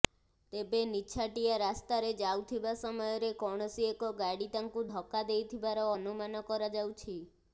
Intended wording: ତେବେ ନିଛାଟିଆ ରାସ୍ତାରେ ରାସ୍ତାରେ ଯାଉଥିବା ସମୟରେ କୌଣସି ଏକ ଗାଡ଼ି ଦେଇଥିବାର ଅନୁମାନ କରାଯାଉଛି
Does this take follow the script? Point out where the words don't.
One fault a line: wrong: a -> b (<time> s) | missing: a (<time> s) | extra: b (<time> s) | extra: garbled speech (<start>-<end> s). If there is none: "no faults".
missing: ରାସ୍ତାରେ (2.1 s)
extra: ତାଙ୍କୁ ଧକ୍କା (4.5 s)